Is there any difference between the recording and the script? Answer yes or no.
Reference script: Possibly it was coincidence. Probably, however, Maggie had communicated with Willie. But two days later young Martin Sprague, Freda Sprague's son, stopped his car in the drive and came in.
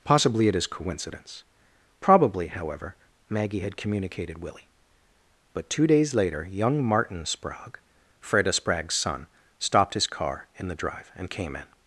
yes